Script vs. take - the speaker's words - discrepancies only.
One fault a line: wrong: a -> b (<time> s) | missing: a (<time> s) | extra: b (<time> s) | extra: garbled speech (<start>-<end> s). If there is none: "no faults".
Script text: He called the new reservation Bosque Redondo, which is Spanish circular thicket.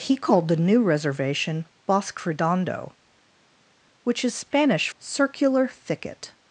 no faults